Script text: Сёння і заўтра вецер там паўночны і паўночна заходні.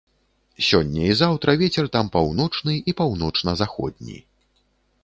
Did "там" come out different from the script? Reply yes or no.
no